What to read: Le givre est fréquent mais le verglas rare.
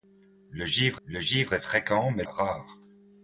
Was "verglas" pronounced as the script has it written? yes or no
no